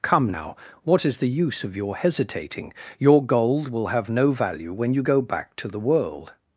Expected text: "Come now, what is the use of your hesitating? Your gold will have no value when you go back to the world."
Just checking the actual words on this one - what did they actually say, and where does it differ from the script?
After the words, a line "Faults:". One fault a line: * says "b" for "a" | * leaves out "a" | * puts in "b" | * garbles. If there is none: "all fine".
"Come now, what is the use of your hesitating? Your gold will have no value when you go back to the world."
Faults:
all fine